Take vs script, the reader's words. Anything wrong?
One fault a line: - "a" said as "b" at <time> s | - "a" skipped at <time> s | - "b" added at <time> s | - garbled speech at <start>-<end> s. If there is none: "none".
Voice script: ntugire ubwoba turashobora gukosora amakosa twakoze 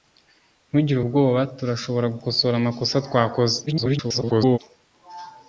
- garbled speech at 3.7-4.6 s